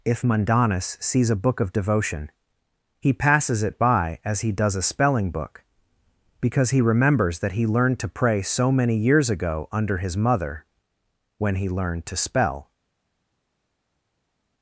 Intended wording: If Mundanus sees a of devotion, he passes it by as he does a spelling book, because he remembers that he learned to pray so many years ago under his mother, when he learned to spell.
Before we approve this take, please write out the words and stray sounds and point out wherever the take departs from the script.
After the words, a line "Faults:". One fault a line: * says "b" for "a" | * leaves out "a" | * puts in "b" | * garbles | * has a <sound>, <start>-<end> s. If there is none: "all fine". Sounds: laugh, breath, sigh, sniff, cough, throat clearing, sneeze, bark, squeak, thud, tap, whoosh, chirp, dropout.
If Mundanus sees a book of devotion, he passes it by as he does a spelling book, because he remembers that he learned to pray so many years ago under his mother, when he learned to spell.
Faults:
* puts in "book"